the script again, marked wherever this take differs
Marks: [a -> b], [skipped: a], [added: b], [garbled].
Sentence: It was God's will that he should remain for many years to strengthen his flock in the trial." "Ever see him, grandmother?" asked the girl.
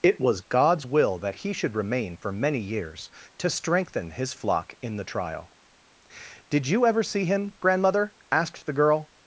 It was God's will that he should remain for many years to strengthen his flock in the trial." [added: Did you] "Ever see him, grandmother?" asked the girl.